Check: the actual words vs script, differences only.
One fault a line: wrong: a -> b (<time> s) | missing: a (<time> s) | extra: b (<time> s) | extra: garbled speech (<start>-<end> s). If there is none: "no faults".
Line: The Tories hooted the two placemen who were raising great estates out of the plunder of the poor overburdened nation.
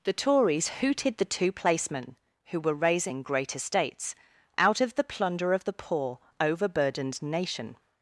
no faults